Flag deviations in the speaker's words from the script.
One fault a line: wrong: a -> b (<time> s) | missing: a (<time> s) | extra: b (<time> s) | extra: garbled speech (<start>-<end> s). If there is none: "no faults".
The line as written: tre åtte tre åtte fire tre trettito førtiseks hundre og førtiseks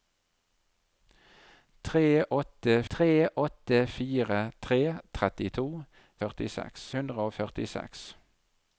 no faults